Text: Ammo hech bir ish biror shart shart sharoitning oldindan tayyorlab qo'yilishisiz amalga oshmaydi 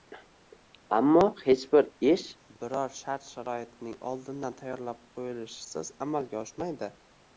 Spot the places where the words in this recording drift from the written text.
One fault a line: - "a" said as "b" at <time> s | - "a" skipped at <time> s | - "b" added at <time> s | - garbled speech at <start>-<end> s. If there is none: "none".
- "shart" skipped at 3.3 s